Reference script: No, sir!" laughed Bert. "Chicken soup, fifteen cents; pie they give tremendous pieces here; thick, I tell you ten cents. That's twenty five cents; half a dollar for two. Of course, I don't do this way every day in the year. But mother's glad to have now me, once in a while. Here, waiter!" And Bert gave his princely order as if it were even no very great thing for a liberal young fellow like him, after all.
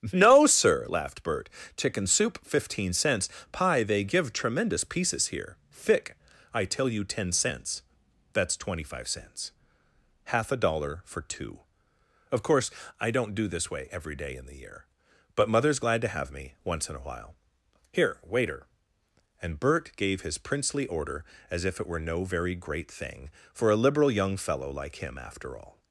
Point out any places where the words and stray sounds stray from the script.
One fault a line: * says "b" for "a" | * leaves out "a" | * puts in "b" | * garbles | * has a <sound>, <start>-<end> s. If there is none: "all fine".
* leaves out "now"
* leaves out "even"